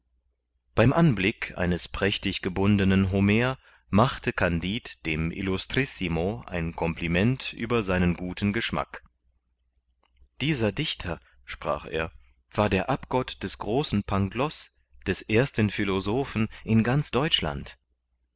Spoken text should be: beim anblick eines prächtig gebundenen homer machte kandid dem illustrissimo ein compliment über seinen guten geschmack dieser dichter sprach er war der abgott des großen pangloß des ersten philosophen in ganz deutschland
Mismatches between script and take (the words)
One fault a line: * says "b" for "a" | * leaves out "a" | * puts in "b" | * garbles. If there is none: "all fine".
all fine